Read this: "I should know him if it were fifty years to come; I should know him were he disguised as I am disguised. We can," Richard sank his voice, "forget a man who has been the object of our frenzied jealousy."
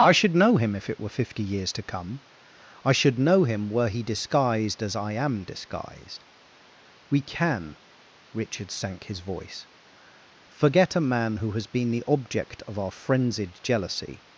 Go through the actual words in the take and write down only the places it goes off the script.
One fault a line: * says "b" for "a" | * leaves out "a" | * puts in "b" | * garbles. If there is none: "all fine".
all fine